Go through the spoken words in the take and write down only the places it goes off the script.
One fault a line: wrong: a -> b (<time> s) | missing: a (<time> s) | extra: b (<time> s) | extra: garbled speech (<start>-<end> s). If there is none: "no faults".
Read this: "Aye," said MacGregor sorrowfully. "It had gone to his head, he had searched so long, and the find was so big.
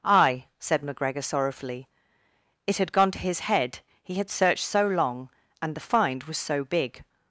no faults